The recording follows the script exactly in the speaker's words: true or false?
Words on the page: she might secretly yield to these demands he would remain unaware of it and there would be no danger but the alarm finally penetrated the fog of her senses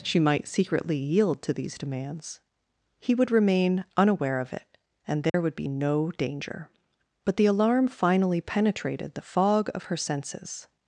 true